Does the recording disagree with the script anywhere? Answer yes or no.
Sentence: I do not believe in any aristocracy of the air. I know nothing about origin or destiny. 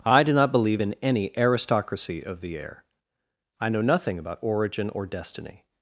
no